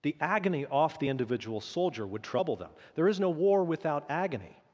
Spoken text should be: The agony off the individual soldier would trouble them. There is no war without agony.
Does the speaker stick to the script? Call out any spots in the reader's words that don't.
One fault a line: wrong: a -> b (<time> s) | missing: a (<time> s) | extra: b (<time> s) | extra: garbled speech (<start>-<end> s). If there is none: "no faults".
no faults